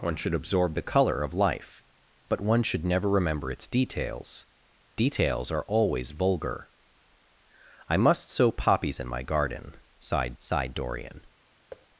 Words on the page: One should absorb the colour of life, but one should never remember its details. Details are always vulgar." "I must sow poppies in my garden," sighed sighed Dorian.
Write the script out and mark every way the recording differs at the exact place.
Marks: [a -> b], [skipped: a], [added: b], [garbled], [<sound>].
One should absorb the colour of life, but one should never remember its details. Details are always vulgar." "I must sow poppies in my garden," sighed sighed Dorian. [thud]